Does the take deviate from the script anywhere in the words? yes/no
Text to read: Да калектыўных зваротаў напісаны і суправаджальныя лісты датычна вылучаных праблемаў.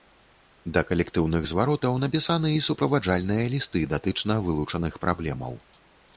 no